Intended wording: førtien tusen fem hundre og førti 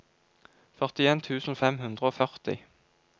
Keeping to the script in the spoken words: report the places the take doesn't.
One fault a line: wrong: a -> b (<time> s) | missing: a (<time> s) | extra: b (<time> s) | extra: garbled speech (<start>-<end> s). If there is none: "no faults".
no faults